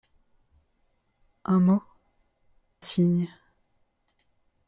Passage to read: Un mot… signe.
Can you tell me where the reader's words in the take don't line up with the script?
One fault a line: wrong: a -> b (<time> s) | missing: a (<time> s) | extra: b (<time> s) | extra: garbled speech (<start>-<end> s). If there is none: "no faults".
no faults